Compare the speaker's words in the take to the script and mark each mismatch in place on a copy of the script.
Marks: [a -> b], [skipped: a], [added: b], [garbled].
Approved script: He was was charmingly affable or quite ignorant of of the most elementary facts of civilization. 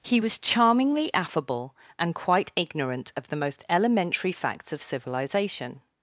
He was [skipped: was] charmingly affable [or -> and] quite ignorant of [skipped: of] the most elementary facts of civilization.